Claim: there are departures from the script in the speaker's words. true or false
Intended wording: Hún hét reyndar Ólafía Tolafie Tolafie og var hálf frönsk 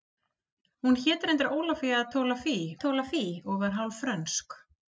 false